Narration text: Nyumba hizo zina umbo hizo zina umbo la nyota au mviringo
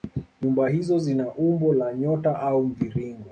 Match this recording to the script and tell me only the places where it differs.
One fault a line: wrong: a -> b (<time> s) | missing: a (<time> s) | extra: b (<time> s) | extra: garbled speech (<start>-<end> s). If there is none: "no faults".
missing: hizo zina umbo (1.7 s)